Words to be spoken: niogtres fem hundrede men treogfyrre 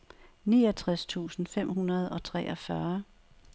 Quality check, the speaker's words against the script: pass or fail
fail